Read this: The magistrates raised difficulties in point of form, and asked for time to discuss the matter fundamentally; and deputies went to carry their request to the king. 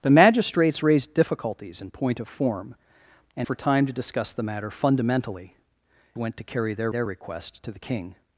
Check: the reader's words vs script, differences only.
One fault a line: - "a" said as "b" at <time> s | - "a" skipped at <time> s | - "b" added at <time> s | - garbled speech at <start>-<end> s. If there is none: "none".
- "asked" skipped at 3.5 s
- "and deputies" skipped at 5.5 s
- "their" added at 6.9 s